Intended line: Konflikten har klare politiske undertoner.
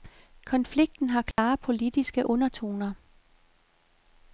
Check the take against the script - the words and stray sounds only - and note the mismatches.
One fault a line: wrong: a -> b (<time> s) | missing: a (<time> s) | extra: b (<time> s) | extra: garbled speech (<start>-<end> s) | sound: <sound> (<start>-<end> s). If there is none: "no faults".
sound: dropout (1.3-1.4 s)